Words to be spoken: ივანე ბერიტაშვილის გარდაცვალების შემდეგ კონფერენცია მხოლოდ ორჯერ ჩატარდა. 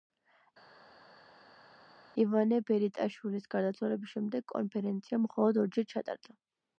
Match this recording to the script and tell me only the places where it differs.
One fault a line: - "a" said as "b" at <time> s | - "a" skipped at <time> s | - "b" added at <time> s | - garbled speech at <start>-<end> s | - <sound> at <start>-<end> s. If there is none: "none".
none